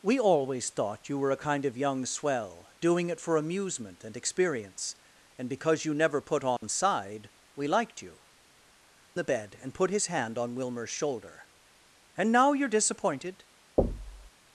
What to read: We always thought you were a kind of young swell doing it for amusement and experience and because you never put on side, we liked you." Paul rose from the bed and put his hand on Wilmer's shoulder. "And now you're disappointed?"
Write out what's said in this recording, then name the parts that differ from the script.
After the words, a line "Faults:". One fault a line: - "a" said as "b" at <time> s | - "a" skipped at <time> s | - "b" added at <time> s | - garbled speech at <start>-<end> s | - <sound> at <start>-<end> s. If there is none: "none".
We always thought you were a kind of young swell doing it for amusement and experience and because you never put on side, we liked you." The bed and put his hand on Wilmer's shoulder. "And now you're disappointed?"
Faults:
- dropout at 6.6-6.6 s
- "Paul rose from" skipped at 8.2 s
- thud at 13.8-14.3 s